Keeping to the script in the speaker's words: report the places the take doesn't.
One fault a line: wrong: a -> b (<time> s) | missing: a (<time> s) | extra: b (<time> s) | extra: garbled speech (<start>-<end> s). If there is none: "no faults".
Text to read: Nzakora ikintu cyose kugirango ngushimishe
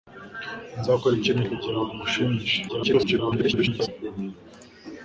missing: cyose (1.4 s)
extra: garbled speech (2.7-3.9 s)